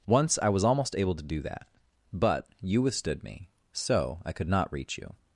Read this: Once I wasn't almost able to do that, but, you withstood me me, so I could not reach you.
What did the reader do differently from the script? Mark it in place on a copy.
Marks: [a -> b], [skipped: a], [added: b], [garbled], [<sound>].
Once I [wasn't -> was] almost able to do that, but, you withstood me [skipped: me,] so I could not reach you.